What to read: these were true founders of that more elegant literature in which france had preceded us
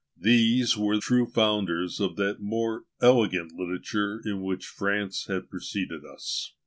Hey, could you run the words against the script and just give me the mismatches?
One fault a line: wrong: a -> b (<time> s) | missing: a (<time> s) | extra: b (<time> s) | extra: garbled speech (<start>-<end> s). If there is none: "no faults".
no faults